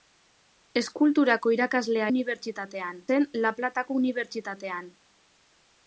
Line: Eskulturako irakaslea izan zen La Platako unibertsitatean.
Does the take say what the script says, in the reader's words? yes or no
no